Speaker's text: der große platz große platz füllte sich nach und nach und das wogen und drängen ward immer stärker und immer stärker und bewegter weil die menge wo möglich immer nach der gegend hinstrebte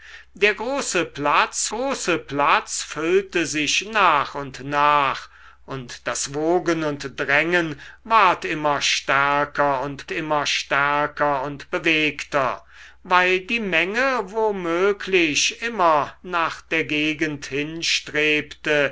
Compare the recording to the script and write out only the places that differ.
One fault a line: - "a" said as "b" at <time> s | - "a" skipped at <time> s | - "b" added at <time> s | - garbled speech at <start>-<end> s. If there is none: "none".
none